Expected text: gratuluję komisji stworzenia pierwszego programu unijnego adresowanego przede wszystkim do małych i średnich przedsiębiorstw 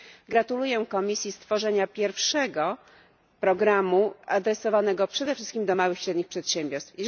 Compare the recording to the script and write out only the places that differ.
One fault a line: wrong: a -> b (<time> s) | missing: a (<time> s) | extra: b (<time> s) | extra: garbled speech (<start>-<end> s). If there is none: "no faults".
missing: unijnego (4.1 s)